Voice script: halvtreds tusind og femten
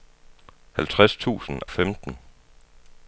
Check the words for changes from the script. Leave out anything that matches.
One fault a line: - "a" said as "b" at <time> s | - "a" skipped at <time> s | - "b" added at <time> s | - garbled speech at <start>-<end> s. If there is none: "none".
- "og" skipped at 1.6 s